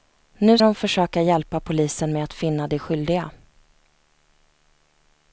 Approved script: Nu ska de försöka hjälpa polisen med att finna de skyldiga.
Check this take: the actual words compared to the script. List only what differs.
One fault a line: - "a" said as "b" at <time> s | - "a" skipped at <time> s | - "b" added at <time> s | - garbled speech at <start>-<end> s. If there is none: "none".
- "ska" skipped at 0.6 s